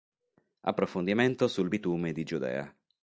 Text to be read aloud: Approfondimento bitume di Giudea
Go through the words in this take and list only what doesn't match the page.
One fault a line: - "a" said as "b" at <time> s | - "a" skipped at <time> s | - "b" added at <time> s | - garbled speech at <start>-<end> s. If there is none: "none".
- "sul" added at 1.5 s